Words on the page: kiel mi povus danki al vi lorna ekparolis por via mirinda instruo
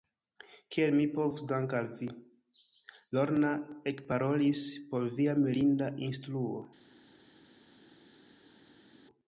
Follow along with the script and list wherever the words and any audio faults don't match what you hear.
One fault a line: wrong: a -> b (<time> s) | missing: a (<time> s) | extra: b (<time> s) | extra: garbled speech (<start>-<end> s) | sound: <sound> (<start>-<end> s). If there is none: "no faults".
no faults